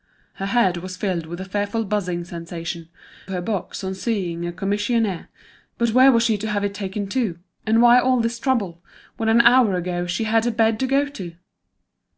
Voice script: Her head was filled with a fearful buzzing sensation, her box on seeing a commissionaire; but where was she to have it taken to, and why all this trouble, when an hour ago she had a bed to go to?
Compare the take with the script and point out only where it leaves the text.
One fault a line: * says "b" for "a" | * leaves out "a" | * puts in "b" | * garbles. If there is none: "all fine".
all fine